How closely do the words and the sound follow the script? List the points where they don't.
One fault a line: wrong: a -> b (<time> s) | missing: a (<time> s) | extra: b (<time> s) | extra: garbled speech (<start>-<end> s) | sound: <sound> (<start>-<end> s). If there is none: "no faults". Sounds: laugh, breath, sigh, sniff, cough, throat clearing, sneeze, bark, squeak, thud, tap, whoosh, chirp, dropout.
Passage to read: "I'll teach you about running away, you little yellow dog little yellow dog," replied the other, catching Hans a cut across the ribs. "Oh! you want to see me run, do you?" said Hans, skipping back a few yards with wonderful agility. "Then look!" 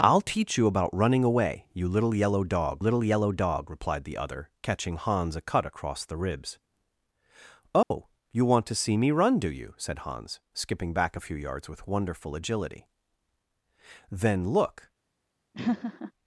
sound: dropout (7.8-7.9 s)
sound: laugh (15.5-16.1 s)